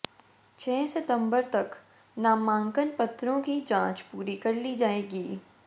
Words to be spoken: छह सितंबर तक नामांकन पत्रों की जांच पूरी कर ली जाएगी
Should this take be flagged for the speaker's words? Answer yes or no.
no